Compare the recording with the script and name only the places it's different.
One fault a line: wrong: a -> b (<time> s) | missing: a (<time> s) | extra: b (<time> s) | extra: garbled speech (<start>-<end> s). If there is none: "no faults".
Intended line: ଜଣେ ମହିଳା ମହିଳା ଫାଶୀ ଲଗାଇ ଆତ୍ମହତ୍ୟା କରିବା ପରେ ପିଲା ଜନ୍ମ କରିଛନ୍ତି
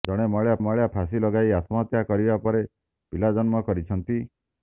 no faults